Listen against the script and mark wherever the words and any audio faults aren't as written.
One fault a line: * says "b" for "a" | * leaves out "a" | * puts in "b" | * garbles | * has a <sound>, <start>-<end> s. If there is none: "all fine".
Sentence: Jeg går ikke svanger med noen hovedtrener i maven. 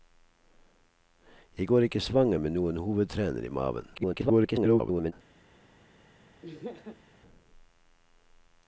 * garbles
* has a laugh, 6.4-7.0 s